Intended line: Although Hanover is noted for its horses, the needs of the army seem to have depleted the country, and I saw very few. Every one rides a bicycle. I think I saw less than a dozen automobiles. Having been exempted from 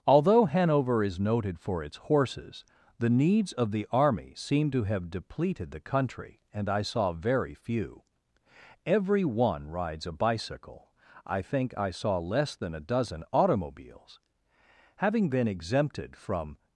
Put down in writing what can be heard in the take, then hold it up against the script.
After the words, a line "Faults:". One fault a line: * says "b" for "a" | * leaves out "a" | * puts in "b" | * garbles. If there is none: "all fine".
Although Hanover is noted for its horses, the needs of the army seem to have depleted the country, and I saw very few. Every one rides a bicycle. I think I saw less than a dozen automobiles. Having been exempted from
Faults:
all fine